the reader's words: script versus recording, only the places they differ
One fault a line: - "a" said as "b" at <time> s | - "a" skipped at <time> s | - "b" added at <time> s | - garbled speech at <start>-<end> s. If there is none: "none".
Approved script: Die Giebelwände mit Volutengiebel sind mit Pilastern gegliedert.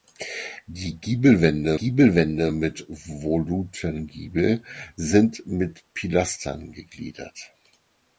- "Giebelwände" added at 1.7 s